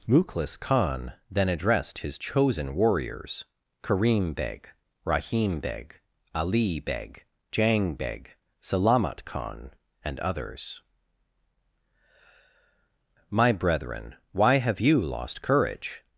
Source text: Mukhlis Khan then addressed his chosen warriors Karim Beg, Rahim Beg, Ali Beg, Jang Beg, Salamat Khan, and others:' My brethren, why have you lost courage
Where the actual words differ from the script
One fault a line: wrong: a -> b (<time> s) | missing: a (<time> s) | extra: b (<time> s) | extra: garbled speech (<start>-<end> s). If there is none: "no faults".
no faults